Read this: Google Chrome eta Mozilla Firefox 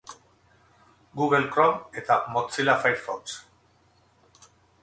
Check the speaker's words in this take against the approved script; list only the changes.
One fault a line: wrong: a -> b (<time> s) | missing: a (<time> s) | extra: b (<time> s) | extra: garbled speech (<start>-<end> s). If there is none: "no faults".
no faults